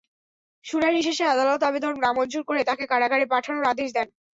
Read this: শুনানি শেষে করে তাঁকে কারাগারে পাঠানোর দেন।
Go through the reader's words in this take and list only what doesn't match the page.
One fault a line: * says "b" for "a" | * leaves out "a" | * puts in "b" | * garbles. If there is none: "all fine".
* puts in "আদালত আবেদন নামঞ্জুর"
* puts in "আদেশ"